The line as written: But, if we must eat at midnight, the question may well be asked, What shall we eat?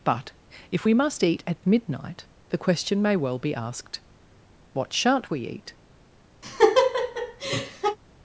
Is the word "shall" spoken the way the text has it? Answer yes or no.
no